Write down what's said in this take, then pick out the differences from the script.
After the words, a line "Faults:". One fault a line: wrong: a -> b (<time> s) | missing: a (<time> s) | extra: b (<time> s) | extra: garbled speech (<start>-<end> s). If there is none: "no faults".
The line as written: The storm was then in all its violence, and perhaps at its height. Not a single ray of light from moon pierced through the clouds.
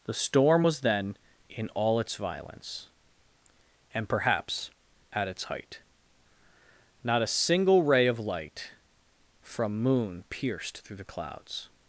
The storm was then in all its violence, and perhaps at its height. Not a single ray of light from moon pierced through the clouds.
Faults:
no faults